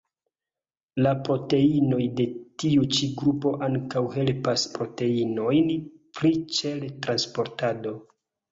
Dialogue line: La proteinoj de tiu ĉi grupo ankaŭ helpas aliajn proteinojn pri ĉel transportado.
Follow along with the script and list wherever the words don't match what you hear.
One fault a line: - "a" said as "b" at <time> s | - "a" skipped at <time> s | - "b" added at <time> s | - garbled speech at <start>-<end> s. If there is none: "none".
- "aliajn" skipped at 4.7 s